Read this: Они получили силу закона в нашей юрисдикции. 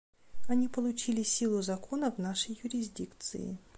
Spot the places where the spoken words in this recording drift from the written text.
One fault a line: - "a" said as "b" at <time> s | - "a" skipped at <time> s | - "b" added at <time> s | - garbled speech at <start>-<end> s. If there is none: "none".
none